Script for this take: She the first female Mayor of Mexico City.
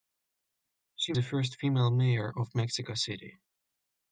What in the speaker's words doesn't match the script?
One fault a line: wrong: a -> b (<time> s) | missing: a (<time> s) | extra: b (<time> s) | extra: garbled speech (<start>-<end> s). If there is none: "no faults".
no faults